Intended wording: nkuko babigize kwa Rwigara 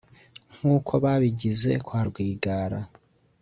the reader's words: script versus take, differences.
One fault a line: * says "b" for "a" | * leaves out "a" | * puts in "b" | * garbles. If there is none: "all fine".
all fine